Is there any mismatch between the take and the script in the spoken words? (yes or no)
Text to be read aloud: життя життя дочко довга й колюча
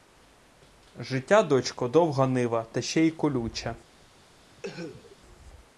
yes